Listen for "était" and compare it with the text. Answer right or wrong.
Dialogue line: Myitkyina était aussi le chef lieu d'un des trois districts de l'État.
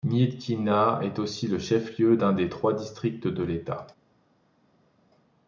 wrong